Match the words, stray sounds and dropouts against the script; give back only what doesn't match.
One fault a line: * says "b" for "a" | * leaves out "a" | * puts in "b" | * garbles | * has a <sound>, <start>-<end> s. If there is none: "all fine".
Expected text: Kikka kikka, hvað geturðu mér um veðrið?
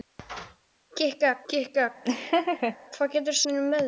* has a laugh, 2.0-2.8 s